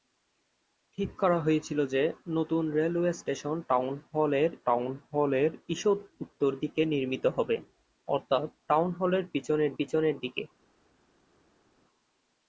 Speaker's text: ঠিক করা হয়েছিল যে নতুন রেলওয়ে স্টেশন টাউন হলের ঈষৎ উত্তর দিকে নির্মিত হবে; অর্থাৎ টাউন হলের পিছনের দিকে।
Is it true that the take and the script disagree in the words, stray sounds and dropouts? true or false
true